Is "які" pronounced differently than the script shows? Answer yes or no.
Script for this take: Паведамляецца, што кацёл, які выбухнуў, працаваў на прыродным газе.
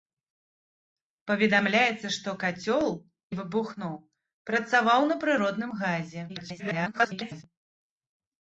yes